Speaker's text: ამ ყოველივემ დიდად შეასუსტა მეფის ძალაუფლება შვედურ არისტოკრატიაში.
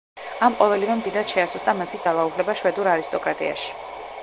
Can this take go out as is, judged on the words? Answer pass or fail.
pass